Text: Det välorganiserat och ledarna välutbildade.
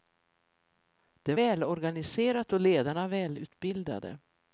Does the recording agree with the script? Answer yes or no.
yes